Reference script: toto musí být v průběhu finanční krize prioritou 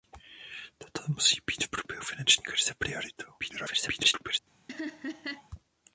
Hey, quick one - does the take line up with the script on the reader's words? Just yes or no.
no